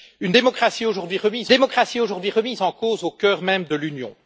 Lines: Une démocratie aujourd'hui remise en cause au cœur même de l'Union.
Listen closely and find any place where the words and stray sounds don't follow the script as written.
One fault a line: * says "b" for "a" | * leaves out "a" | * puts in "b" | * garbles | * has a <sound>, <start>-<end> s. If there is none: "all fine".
* puts in "démocratie aujourd'hui remise"